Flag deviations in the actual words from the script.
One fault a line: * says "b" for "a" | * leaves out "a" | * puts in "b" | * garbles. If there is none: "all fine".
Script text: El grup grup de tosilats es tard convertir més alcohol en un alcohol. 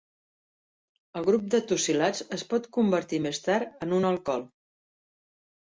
* leaves out "grup"
* says "pot" for "tard"
* says "tard" for "alcohol"